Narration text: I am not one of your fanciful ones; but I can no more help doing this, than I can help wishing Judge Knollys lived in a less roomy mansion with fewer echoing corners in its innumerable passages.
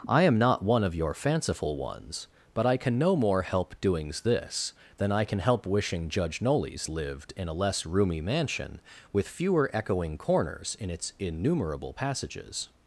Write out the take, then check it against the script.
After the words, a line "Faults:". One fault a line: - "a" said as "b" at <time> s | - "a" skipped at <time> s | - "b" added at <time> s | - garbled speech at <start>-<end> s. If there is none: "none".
I am not one of your fanciful ones; but I can no more help doings this, than I can help wishing Judge Knollys lived in a less roomy mansion with fewer echoing corners in its innumerable passages.
Faults:
- "doing" said as "doings" at 3.8 s